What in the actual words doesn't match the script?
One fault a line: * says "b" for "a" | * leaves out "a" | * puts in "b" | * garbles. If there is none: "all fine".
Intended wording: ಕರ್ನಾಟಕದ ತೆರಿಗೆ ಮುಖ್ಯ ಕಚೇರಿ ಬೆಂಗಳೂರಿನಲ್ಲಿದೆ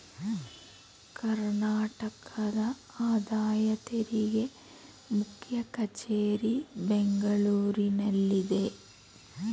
* puts in "ಆದಾಯ"